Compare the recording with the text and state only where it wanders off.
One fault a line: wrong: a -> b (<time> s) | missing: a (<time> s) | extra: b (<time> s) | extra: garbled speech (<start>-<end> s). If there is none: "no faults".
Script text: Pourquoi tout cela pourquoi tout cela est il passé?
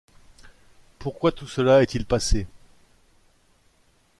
missing: pourquoi tout cela (1.8 s)